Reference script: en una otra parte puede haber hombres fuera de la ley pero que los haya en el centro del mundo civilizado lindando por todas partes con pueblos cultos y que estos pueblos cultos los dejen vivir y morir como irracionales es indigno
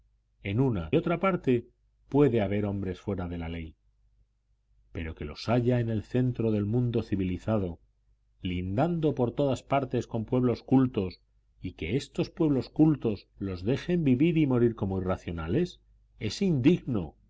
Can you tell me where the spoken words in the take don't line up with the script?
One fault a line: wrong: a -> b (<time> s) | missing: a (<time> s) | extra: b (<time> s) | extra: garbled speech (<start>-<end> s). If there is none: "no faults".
no faults